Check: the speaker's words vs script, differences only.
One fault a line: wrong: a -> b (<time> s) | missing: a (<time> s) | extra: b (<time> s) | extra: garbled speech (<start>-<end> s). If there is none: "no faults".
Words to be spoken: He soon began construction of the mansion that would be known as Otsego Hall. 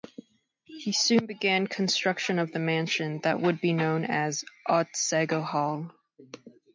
no faults